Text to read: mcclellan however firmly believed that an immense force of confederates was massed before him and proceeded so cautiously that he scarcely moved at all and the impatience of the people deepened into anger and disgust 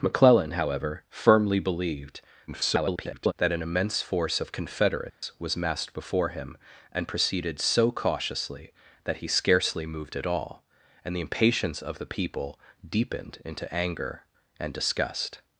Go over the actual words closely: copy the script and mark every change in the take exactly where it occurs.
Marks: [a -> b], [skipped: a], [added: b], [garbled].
mcclellan however firmly believed [garbled] that an immense force of confederates was massed before him and proceeded so cautiously that he scarcely moved at all and the impatience of the people deepened into anger and disgust